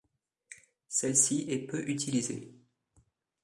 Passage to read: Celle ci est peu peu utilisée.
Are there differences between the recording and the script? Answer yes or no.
yes